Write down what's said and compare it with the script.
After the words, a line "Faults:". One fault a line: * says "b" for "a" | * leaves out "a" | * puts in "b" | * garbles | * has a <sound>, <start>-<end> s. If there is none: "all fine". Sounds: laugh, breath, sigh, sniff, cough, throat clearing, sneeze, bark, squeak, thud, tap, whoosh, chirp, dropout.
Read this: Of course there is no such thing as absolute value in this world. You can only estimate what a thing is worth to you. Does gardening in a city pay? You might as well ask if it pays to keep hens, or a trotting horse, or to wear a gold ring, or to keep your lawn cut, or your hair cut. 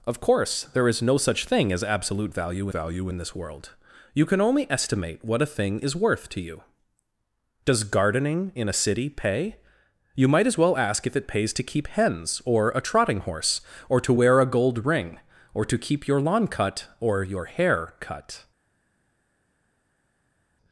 Of course there is no such thing as absolute value value in this world. You can only estimate what a thing is worth to you. Does gardening in a city pay? You might as well ask if it pays to keep hens, or a trotting horse, or to wear a gold ring, or to keep your lawn cut, or your hair cut.
Faults:
* puts in "value"